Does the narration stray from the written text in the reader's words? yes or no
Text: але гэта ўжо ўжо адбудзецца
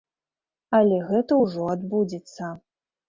yes